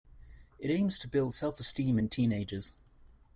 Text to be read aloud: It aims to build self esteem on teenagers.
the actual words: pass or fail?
fail